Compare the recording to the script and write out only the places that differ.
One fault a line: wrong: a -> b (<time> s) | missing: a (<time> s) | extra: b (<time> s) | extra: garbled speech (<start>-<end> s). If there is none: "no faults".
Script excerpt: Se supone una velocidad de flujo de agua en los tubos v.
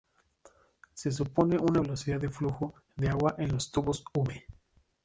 no faults